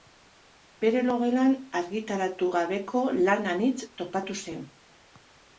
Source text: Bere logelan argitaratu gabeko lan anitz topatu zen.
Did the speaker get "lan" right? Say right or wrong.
right